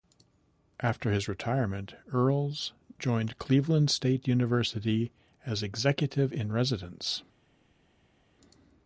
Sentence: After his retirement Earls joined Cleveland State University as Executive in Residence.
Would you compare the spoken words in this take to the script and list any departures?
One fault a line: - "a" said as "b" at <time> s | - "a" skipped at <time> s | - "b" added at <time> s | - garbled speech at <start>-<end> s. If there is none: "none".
none